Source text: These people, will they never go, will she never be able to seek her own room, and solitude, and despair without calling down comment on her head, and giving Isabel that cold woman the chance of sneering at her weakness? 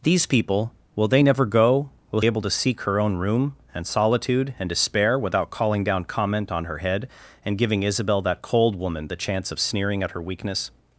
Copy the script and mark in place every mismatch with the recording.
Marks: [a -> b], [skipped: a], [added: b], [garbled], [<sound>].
These people, will they never go, will [skipped: she never be] able to seek her own room, and solitude, and despair without calling down comment on her head, and giving Isabel that cold woman the chance of sneering at her weakness?